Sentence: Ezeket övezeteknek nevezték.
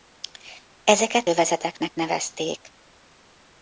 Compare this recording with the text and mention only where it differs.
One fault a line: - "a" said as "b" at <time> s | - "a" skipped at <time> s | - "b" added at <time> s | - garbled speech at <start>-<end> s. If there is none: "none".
none